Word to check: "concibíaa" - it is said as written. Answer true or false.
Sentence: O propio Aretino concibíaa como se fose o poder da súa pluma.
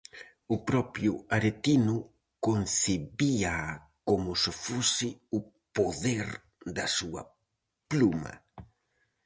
true